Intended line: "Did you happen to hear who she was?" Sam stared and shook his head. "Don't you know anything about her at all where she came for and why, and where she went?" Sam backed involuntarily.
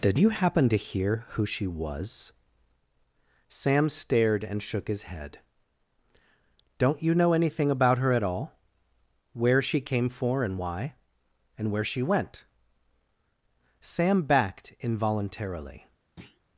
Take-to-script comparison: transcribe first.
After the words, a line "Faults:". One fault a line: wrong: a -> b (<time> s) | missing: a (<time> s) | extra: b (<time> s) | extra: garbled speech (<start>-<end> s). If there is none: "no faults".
"Did you happen to hear who she was?" Sam stared and shook his head. "Don't you know anything about her at all where she came for and why, and where she went?" Sam backed involuntarily.
Faults:
no faults